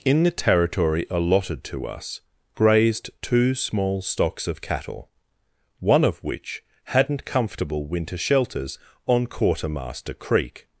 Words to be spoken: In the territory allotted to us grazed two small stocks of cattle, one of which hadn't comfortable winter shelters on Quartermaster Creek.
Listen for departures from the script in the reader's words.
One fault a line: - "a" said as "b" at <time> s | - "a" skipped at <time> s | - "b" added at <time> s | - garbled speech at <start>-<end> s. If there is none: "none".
none